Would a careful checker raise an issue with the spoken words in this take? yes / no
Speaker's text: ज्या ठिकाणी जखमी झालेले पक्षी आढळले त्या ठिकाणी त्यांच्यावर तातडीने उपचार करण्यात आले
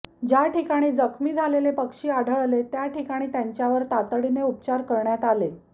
no